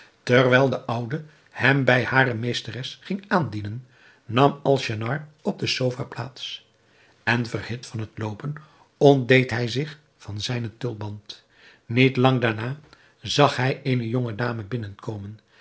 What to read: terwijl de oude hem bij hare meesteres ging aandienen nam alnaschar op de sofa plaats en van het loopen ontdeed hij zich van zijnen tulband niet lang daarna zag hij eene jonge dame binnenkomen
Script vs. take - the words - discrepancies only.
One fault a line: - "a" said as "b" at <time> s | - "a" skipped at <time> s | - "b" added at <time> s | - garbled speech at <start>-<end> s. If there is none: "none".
- "verhit" added at 7.5 s